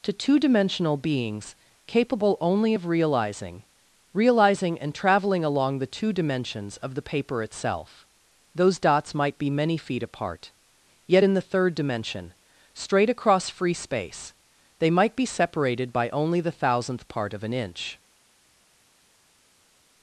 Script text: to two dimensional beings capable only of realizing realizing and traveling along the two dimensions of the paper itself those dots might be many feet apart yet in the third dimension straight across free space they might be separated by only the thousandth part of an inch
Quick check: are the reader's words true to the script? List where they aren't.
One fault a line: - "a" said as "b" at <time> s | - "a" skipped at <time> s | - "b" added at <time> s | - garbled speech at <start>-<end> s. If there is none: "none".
none